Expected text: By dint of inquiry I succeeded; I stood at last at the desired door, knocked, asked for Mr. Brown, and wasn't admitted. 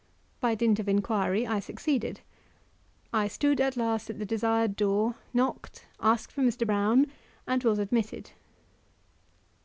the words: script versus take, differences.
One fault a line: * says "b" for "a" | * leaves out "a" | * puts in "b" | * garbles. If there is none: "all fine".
* says "was" for "wasn't"